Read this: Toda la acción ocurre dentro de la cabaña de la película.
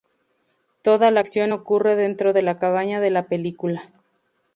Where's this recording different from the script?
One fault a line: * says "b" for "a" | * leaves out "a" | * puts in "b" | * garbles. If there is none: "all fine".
all fine